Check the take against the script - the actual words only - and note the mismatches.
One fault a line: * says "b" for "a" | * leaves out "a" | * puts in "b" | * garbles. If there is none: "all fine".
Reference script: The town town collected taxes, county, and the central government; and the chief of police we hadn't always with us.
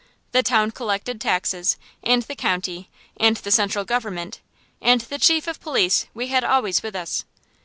* leaves out "town"
* puts in "and the"
* says "had" for "hadn't"